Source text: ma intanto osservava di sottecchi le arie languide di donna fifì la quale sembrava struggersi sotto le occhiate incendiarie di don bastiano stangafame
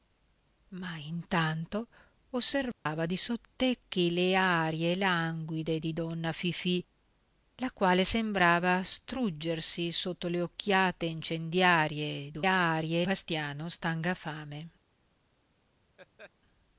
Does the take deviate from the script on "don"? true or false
true